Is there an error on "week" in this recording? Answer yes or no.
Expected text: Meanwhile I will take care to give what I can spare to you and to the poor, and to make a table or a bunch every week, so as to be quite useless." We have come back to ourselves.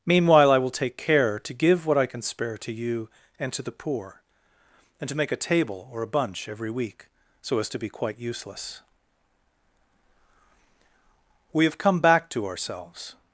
no